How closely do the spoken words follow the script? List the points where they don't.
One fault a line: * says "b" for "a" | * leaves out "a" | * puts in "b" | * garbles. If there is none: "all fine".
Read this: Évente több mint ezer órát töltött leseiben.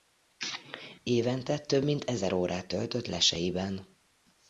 all fine